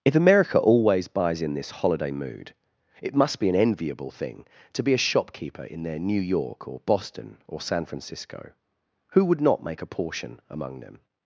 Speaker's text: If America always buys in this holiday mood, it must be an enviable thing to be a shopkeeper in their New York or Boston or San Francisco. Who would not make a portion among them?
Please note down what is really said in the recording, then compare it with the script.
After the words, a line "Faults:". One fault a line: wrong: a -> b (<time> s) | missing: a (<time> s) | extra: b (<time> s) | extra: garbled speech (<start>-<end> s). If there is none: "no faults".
If America always buys in this holiday mood, it must be an enviable thing to be a shopkeeper in their New York or Boston or San Francisco. Who would not make a portion among them?
Faults:
no faults